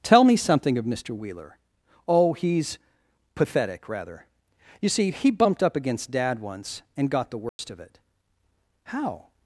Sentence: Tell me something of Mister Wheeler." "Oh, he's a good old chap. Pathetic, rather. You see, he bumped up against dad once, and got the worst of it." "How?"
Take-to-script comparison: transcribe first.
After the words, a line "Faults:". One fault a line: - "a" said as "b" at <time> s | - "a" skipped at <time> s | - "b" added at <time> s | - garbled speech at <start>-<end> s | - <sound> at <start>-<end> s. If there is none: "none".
Tell me something of Mister Wheeler." "Oh, he's. Pathetic, rather. You see, he bumped up against dad once, and got the worst of it." "How?"
Faults:
- "a good old chap" skipped at 2.8 s
- dropout at 7.5-7.6 s